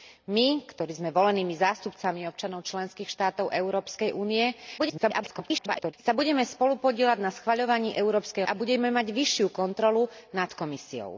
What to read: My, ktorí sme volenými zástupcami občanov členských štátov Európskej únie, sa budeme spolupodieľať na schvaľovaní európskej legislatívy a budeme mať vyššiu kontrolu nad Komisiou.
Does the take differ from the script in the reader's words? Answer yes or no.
yes